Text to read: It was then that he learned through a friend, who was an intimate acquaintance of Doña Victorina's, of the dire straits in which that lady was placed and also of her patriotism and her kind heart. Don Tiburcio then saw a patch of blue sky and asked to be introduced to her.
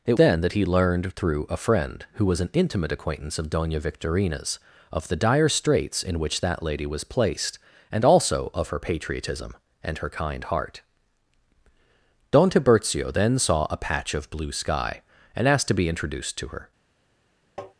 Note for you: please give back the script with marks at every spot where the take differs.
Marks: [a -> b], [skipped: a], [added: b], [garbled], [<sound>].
It [skipped: was] then that he learned through a friend, who was an intimate acquaintance of Doña Victorina's, of the dire straits in which that lady was placed and also of her patriotism and her kind heart. Don Tiburcio then saw a patch of blue sky and asked to be introduced to her. [tap]